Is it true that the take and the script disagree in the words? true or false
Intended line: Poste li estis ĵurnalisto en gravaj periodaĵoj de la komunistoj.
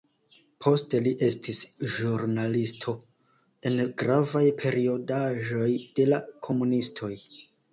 false